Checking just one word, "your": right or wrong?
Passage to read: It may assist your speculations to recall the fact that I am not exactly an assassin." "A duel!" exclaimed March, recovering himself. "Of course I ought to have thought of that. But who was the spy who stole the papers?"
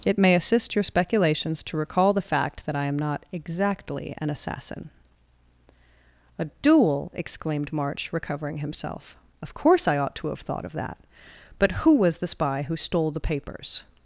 right